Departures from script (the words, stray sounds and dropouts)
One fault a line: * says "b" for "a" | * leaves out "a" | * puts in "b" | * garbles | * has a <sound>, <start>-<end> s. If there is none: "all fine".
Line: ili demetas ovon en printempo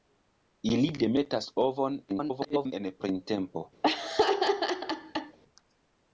* garbles
* has a laugh, 3.8-5.4 s